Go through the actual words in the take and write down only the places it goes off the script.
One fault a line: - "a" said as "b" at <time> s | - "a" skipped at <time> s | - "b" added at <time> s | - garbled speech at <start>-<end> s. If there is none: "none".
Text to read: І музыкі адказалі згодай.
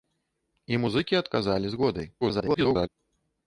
- garbled speech at 2.2-2.9 s